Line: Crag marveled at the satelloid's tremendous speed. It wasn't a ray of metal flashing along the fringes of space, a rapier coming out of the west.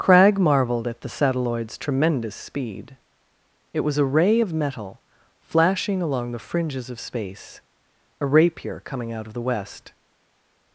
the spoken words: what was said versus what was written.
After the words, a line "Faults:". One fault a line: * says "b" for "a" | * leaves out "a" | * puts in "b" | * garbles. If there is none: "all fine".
Crag marveled at the satelloid's tremendous speed. It was a ray of metal flashing along the fringes of space, a rapier coming out of the west.
Faults:
* says "was" for "wasn't"